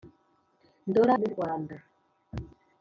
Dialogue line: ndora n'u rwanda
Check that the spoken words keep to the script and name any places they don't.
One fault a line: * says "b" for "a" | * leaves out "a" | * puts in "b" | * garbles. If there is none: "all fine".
all fine